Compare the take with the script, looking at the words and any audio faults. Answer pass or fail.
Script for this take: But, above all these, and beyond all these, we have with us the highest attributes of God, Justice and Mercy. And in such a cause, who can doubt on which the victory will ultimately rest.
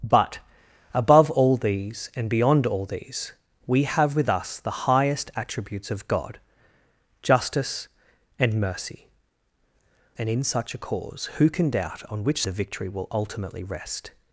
pass